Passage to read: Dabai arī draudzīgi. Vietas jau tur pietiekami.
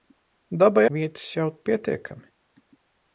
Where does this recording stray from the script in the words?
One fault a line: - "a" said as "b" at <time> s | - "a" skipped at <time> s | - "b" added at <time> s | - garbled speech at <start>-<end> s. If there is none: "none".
- "arī draudzīgi" skipped at 0.8 s
- "tur" skipped at 1.5 s